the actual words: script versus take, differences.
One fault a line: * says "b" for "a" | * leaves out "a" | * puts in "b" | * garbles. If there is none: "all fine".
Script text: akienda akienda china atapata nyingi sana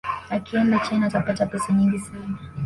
* leaves out "akienda"
* puts in "pesa"